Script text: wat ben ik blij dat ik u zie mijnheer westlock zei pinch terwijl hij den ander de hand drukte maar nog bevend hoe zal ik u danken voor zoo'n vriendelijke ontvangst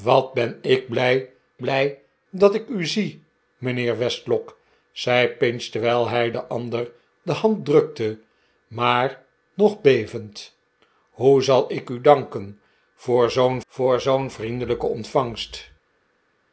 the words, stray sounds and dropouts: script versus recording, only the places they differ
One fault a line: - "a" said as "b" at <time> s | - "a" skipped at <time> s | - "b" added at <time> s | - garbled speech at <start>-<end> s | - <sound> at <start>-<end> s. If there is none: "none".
- "blij" added at 1.6 s
- "voor zoo'n" added at 13.7 s